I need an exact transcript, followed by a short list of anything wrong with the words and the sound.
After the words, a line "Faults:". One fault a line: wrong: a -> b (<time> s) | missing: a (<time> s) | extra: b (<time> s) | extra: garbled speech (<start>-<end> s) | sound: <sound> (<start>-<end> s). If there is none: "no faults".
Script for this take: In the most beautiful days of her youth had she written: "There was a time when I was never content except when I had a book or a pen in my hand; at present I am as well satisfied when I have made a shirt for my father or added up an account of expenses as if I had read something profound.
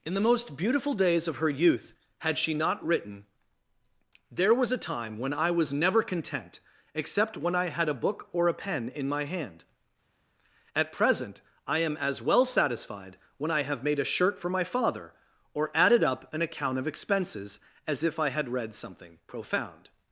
In the most beautiful days of her youth had she not written: "There was a time when I was never content except when I had a book or a pen in my hand; at present I am as well satisfied when I have made a shirt for my father or added up an account of expenses as if I had read something profound.
Faults:
extra: not (2.5 s)